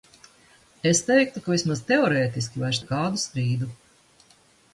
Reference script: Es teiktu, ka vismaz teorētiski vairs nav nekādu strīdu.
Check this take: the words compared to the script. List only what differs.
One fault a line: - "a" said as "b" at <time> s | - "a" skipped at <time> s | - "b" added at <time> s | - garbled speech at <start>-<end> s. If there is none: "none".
- "nav" skipped at 2.8 s